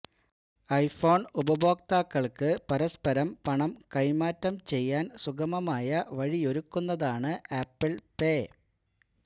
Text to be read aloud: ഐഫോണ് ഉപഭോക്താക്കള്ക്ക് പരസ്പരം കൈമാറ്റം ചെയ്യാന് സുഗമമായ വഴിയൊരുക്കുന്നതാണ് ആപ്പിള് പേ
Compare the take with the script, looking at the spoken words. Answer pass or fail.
fail